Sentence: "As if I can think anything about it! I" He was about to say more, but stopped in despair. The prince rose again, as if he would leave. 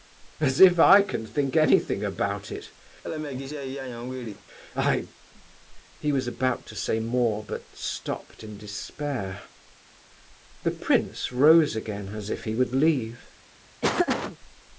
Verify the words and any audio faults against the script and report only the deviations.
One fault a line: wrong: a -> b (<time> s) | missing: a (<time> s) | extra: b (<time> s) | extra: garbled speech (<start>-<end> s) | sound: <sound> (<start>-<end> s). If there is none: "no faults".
sound: laugh (3.0-4.5 s)
sound: laugh (13.8-14.4 s)